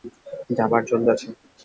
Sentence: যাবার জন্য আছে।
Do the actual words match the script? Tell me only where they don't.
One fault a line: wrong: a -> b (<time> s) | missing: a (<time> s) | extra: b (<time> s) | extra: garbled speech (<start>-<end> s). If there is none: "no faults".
no faults